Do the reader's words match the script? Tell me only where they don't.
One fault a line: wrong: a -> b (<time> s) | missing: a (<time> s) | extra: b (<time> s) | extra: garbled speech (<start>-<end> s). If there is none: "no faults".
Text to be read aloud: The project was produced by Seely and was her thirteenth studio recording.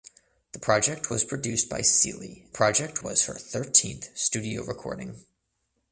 wrong: and -> project (2.5 s)